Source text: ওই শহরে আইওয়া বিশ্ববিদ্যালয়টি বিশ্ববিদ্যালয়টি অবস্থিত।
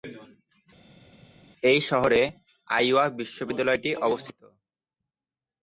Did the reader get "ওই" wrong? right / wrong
wrong